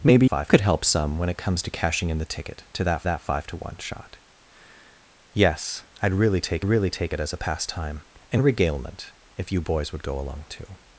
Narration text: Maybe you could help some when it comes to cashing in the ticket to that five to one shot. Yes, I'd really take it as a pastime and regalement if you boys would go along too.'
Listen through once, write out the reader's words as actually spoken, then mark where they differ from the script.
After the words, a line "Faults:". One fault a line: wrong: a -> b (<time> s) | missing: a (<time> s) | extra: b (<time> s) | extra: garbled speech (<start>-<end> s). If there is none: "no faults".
Maybe five could help some when it comes to cashing in the ticket to that that five to one shot. Yes, I'd really take really take it as a pastime and regalement if you boys would go along too.'
Faults:
wrong: you -> five (0.2 s)
extra: that (3.0 s)
extra: really take (6.6 s)